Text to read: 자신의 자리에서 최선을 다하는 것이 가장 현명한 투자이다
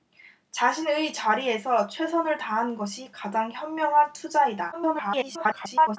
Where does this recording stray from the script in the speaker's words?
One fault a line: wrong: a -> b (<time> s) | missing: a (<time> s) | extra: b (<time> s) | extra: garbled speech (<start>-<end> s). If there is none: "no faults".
extra: garbled speech (4.7-6.0 s)